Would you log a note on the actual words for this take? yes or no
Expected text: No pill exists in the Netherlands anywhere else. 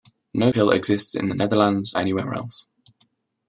no